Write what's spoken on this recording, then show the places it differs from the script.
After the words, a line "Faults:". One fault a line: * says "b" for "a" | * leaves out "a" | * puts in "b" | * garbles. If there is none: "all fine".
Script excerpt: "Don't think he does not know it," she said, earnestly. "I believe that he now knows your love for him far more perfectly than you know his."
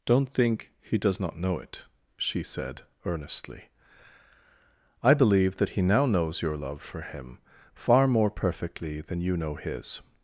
"Don't think he does not know it," she said, earnestly. "I believe that he now knows your love for him far more perfectly than you know his."
Faults:
all fine